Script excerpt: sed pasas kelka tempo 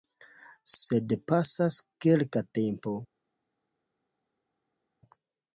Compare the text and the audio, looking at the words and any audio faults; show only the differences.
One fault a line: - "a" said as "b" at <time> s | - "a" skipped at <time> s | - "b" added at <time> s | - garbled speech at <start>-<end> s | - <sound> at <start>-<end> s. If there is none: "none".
none